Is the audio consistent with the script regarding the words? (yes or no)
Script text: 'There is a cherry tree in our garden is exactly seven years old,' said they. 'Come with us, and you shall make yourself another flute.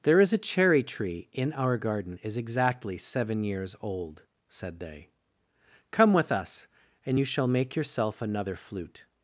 yes